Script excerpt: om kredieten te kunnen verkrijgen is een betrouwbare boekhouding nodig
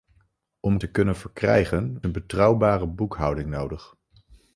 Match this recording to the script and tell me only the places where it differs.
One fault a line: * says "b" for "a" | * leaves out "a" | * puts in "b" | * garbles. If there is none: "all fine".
* leaves out "kredieten"
* leaves out "is"